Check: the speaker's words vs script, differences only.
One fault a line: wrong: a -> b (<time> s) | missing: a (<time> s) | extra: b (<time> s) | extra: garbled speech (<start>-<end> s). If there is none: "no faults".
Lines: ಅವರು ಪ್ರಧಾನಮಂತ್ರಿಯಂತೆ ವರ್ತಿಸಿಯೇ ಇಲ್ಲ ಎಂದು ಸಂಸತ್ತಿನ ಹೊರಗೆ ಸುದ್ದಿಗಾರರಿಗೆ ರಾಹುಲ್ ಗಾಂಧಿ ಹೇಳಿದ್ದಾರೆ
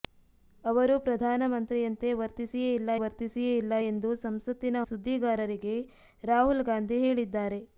extra: ವರ್ತಿಸಿಯೇ ಇಲ್ಲ (3.0 s)
missing: ಹೊರಗೆ (4.8 s)